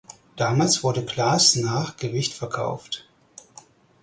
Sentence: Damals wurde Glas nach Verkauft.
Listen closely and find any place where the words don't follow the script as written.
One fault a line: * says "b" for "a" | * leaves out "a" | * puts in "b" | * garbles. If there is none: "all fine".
* puts in "Gewicht"